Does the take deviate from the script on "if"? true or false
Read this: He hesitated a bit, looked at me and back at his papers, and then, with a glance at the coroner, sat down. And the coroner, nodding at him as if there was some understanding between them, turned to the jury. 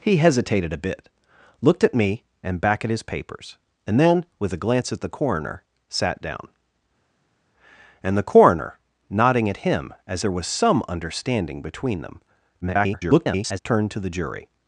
true